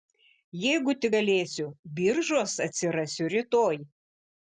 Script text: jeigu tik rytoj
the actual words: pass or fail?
fail